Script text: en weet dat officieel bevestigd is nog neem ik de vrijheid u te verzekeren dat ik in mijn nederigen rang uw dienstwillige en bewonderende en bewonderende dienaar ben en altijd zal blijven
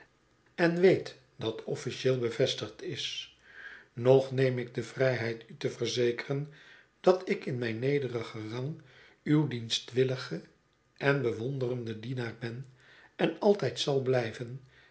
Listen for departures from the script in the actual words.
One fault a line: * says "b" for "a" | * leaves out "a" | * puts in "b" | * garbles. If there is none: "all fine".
* leaves out "en bewonderende"